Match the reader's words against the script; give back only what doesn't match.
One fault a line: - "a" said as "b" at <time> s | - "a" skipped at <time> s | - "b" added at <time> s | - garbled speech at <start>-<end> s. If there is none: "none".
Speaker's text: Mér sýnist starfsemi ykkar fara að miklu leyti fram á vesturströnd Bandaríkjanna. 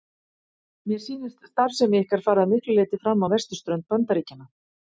none